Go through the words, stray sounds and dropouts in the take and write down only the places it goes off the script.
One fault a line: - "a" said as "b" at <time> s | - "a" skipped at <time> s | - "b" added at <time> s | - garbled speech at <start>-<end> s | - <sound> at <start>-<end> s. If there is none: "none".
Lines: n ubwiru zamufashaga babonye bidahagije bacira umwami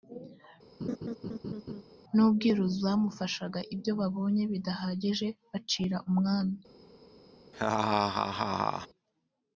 - laugh at 0.8-1.8 s
- "ibyo" added at 3.7 s
- laugh at 7.5-8.9 s